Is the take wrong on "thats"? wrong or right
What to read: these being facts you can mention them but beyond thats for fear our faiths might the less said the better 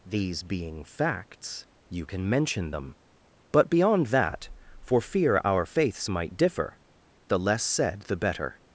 wrong